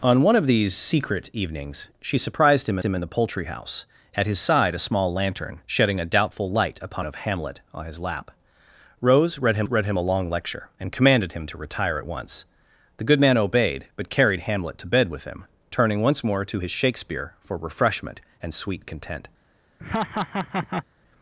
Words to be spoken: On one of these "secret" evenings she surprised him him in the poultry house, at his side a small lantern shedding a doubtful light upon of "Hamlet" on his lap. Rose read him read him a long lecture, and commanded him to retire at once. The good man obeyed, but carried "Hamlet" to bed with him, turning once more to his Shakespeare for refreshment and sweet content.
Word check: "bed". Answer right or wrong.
right